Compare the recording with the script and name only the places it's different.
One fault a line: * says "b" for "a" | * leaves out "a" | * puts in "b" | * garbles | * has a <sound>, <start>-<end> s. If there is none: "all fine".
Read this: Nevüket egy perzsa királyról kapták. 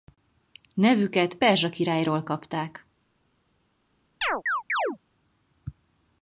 * leaves out "egy"
* has a chirp, 4.2-5.0 s